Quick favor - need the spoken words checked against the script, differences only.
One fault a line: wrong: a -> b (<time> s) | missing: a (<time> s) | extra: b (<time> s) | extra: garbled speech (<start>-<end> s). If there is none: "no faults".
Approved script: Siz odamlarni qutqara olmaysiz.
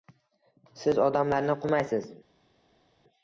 missing: qutqara (1.6 s)